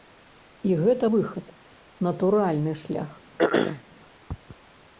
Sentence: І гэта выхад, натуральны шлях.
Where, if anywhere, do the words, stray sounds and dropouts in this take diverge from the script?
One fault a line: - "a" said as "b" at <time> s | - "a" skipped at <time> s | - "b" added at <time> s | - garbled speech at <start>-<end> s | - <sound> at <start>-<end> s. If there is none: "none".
- throat clearing at 3.4-3.8 s